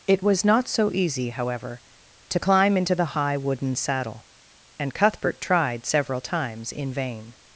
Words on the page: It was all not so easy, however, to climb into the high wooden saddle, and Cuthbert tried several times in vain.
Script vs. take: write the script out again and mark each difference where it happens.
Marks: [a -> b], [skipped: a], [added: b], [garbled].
It was [skipped: all] not so easy, however, to climb into the high wooden saddle, and Cuthbert tried several times in vain.